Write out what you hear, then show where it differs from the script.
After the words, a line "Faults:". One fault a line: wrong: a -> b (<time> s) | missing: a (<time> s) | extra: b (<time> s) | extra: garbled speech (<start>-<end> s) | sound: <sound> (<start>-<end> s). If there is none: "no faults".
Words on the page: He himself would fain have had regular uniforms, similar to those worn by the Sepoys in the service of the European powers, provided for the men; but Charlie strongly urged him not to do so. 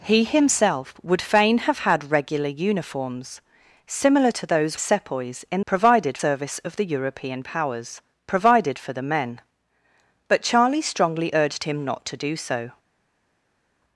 He himself would fain have had regular uniforms, similar to those Sepoys in provided service of the European powers, provided for the men; but Charlie strongly urged him not to do so.
Faults:
missing: worn by the (4.8 s)
wrong: the -> provided (5.7 s)